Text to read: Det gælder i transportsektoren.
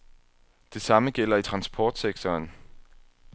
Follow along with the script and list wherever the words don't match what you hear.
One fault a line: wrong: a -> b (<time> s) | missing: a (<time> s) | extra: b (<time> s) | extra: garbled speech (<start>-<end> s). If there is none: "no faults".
extra: samme (0.8 s)